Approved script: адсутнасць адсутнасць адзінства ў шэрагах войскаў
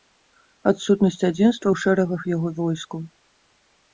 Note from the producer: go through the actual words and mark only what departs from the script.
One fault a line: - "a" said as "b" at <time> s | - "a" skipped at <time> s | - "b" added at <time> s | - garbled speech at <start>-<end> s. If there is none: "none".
- "адсутнасць" skipped at 1.2 s
- "яго" added at 2.3 s